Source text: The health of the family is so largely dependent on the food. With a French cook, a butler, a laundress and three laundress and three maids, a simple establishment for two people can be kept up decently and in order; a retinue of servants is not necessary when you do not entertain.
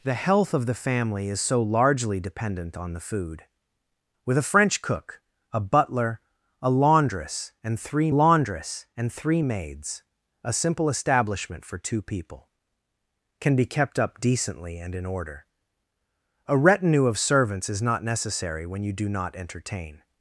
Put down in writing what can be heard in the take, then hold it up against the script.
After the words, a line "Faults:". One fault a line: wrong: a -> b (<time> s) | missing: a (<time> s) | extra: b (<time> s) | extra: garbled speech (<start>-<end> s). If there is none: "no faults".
The health of the family is so largely dependent on the food. With a French cook, a butler, a laundress and three laundress and three maids, a simple establishment for two people can be kept up decently and in order; a retinue of servants is not necessary when you do not entertain.
Faults:
no faults